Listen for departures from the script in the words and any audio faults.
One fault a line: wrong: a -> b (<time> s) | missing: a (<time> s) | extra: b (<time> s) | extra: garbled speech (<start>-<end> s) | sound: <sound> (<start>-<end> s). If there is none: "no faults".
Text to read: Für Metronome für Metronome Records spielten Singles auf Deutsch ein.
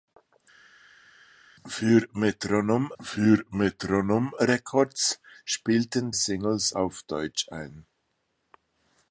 no faults